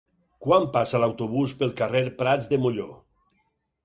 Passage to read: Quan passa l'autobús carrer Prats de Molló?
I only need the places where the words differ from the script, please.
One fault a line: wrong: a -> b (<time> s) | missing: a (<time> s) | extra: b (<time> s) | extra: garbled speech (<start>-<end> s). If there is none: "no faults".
extra: pel (1.6 s)